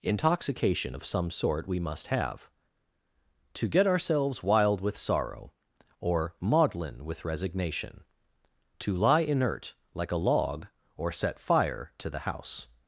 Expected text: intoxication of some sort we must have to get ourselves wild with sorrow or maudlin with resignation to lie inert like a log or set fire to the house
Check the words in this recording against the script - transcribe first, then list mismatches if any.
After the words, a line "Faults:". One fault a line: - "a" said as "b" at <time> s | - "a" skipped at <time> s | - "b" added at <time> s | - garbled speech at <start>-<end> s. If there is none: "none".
intoxication of some sort we must have to get ourselves wild with sorrow or maudlin with resignation to lie inert like a log or set fire to the house
Faults:
none